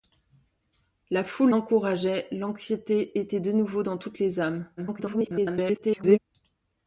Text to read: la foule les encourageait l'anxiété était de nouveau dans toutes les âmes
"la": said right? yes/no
yes